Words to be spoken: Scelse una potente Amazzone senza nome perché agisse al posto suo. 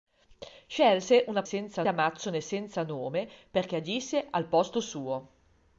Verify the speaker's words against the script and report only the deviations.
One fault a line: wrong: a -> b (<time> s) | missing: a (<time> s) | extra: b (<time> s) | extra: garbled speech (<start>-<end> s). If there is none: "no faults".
wrong: potente -> senza (1.4 s)